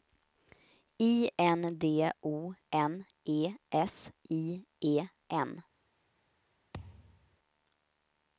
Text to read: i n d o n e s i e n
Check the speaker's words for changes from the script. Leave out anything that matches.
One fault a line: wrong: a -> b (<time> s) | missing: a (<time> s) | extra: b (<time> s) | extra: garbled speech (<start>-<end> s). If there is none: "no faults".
no faults